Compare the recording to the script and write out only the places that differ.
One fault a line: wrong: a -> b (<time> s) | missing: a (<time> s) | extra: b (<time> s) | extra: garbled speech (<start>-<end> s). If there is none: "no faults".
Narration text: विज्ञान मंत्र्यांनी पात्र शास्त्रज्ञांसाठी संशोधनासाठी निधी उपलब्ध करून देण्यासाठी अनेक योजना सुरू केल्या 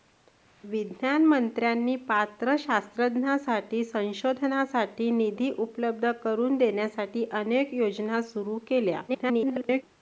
extra: garbled speech (9.1-9.8 s)